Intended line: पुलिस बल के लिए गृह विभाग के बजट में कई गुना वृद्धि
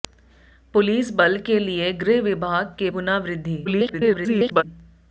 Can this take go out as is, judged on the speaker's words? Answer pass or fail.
fail